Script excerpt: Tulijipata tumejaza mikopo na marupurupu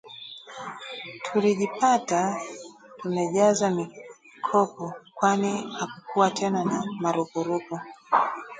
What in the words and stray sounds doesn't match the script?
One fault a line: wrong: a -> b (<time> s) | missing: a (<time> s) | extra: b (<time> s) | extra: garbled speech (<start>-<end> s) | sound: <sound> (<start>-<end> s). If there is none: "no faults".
extra: kwani hakukuwa tena (5.1 s)